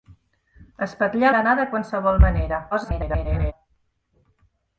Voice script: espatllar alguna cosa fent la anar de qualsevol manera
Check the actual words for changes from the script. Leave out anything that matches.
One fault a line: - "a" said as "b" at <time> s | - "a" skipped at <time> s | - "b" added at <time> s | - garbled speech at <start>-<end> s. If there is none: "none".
- "alguna cosa fent" skipped at 1.3 s
- garbled speech at 2.7-3.5 s